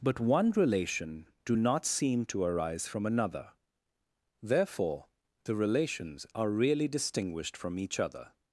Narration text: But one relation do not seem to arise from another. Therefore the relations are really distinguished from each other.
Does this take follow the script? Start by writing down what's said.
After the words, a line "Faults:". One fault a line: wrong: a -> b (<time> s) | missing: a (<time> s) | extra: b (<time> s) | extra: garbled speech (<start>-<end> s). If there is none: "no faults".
But one relation do not seem to arise from another. Therefore the relations are really distinguished from each other.
Faults:
no faults